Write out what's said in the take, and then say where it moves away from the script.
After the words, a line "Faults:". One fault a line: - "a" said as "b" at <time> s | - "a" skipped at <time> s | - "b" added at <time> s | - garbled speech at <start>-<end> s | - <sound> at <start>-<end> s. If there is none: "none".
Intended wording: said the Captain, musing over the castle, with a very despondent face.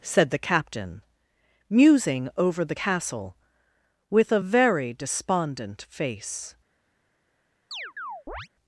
said the Captain, musing over the castle, with a very despondent face.
Faults:
- chirp at 7.7-8.5 s